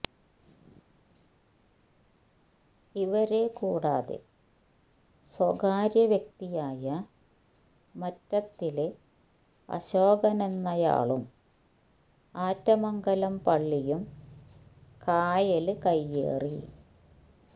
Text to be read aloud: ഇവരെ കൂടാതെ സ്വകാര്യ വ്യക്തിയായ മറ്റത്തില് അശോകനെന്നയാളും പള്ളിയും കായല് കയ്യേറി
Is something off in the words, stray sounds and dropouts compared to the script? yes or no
yes